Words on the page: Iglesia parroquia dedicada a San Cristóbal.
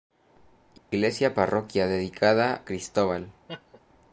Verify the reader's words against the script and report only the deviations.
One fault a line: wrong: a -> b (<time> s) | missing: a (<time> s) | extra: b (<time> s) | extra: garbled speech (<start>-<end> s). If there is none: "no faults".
missing: a San (2.6 s)